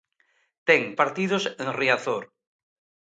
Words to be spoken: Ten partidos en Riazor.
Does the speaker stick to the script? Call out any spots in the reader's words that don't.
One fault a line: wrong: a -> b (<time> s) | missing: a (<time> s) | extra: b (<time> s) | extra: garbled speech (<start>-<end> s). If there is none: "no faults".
no faults